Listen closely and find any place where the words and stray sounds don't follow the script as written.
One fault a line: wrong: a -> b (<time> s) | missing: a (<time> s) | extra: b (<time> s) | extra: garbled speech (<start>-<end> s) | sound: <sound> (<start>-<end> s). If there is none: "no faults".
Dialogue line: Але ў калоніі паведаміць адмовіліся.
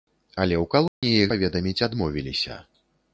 sound: dropout (0.9-1.0 s)